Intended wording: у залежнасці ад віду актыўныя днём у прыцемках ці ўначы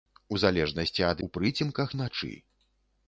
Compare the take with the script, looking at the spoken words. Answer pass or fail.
fail